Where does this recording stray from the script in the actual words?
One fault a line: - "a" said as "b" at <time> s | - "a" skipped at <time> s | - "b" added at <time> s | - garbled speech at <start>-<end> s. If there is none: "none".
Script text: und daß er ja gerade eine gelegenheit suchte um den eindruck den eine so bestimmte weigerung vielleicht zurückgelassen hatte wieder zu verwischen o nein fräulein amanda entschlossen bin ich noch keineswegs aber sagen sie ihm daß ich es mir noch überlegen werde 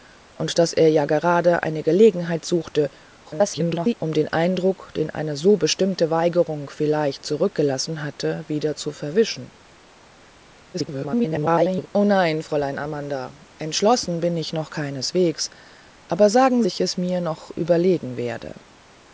- garbled speech at 3.2-3.9 s
- garbled speech at 10.7-11.9 s
- "sie ihm daß" skipped at 16.6 s